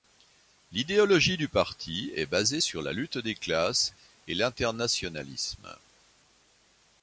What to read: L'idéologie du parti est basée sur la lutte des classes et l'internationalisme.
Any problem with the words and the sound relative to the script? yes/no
no